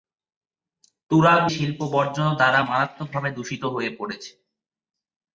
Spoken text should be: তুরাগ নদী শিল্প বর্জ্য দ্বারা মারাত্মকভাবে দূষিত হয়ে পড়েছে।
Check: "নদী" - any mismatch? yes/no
yes